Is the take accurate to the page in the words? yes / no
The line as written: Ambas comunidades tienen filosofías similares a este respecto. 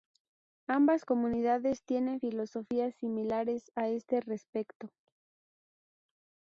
yes